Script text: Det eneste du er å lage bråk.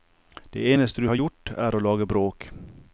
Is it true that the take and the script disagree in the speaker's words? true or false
true